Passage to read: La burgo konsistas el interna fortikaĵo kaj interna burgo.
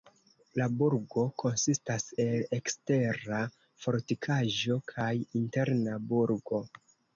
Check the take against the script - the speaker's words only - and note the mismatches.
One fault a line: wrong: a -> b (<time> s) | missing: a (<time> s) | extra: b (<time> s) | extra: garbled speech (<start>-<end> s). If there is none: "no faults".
wrong: interna -> ekstera (2.6 s)